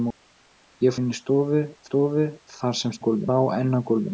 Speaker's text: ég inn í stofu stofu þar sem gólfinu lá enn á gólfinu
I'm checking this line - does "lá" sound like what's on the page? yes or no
yes